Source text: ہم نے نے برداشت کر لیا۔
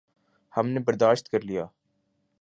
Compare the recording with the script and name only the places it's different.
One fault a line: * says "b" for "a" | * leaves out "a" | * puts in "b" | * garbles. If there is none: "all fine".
* leaves out "نے"